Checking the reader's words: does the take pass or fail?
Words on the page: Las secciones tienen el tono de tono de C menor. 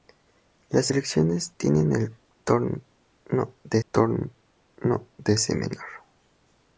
pass